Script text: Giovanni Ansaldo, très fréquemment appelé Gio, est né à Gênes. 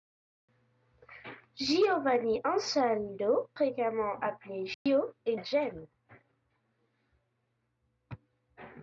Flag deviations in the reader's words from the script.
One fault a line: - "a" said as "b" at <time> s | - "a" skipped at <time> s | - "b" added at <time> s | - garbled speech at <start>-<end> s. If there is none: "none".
- "très" skipped at 3.5 s
- "né" skipped at 5.4 s